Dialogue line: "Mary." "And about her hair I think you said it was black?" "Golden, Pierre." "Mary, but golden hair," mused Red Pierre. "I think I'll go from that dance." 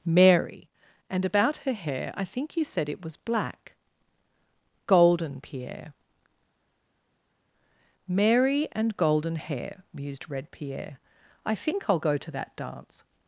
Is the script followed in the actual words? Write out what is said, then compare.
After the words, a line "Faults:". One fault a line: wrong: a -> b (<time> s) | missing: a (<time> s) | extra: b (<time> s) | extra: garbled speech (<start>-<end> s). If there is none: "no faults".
"Mary." "And about her hair I think you said it was black?" "Golden, Pierre." "Mary, and golden hair," mused Red Pierre. "I think I'll go to that dance."
Faults:
wrong: but -> and (8.7 s)
wrong: from -> to (12.2 s)